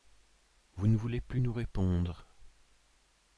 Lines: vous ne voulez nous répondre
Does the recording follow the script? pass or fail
fail